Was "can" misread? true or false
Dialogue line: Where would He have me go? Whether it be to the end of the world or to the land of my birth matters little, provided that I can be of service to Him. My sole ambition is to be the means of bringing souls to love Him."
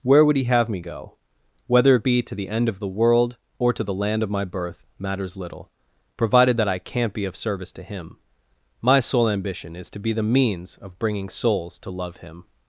true